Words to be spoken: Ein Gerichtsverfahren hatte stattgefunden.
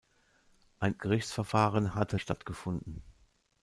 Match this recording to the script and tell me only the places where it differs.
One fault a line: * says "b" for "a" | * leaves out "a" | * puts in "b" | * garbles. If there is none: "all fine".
all fine